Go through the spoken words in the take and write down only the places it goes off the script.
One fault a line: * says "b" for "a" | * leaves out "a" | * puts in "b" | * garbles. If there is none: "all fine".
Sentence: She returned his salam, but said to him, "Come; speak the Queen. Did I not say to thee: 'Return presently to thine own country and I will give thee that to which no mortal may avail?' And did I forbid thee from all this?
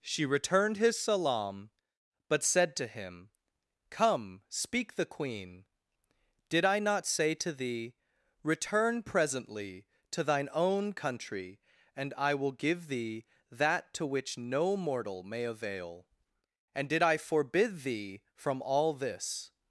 all fine